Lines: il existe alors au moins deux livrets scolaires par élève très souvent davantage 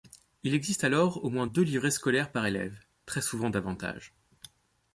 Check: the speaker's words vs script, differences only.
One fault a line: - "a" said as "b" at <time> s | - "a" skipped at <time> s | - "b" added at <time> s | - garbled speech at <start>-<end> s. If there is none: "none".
none